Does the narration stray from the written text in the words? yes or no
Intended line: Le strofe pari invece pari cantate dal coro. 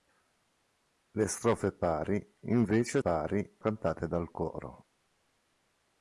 no